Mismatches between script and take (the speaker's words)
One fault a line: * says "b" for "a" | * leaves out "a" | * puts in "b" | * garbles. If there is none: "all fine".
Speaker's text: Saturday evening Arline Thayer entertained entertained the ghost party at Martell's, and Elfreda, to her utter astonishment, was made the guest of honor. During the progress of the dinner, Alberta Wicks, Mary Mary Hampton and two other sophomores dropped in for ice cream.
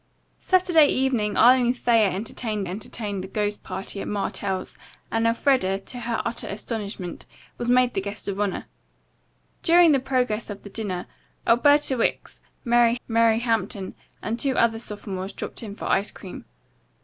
all fine